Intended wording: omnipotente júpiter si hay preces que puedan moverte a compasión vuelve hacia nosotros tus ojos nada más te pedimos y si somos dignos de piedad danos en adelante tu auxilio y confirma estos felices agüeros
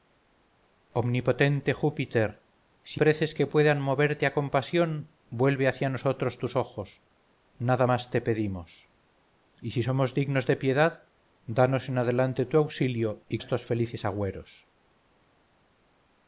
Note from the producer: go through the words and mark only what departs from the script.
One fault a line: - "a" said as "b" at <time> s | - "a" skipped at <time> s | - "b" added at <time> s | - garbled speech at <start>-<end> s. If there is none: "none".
- "hay" skipped at 3.0 s
- "confirma" skipped at 13.4 s